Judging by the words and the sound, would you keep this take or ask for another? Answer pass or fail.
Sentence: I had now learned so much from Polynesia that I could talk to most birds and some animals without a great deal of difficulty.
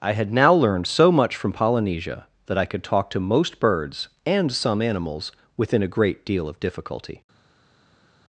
fail